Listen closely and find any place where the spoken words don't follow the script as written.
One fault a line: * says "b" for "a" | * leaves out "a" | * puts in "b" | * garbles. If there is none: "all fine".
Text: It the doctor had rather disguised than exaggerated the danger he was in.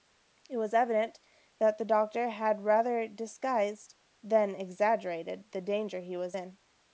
* puts in "was evident that"